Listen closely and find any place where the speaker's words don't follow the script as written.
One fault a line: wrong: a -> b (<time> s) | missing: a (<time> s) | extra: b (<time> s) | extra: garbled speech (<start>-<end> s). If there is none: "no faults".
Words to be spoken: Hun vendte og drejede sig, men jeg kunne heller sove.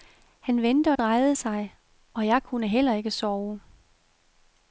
wrong: Hun -> Han (0.4 s)
wrong: men -> og (2.1 s)
extra: ikke (2.9 s)